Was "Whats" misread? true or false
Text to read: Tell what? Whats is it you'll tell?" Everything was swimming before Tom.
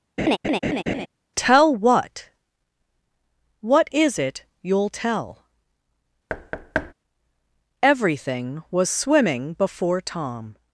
true